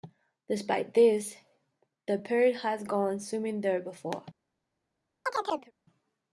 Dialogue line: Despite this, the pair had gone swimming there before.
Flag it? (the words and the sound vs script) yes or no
yes